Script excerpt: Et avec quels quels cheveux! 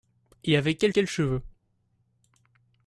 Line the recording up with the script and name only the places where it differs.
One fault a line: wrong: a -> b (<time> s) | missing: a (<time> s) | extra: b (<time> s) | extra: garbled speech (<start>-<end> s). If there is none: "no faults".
no faults